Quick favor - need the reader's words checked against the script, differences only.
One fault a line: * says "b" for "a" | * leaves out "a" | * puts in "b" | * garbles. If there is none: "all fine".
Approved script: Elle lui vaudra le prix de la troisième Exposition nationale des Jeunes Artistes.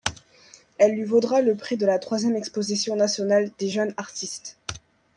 all fine